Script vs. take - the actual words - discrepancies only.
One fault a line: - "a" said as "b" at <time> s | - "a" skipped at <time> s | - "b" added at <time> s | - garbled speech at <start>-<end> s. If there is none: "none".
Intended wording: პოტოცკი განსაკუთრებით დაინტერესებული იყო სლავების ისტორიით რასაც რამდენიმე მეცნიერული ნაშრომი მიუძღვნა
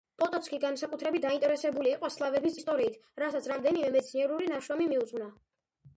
none